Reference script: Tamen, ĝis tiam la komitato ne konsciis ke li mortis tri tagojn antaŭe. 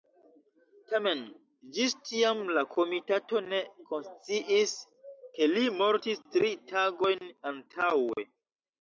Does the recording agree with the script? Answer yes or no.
yes